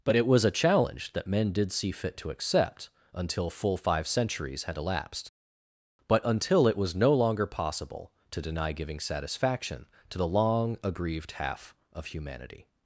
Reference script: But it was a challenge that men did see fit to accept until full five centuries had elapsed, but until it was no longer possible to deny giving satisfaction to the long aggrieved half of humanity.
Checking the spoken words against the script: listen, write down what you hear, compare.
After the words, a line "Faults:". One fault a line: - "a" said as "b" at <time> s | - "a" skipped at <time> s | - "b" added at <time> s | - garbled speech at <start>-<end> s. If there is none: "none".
But it was a challenge that men did see fit to accept until full five centuries had elapsed, but until it was no longer possible to deny giving satisfaction to the long aggrieved half of humanity.
Faults:
none